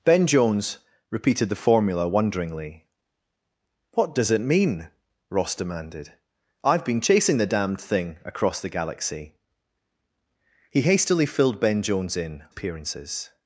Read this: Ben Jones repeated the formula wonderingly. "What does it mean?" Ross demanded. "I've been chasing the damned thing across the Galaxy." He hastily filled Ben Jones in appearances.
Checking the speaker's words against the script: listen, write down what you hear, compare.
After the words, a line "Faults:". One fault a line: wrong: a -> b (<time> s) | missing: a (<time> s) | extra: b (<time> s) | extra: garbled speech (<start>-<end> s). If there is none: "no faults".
Ben Jones repeated the formula wonderingly. "What does it mean?" Ross demanded. "I've been chasing the damned thing across the Galaxy." He hastily filled Ben Jones in appearances.
Faults:
no faults